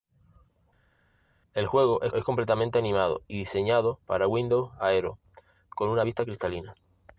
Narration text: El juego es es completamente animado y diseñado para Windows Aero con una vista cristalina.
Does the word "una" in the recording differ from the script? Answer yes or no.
no